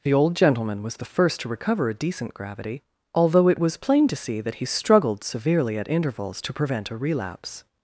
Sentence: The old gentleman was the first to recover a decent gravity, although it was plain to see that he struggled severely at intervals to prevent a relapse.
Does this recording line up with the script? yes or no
yes